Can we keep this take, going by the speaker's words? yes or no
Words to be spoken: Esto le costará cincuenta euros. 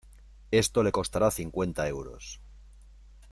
yes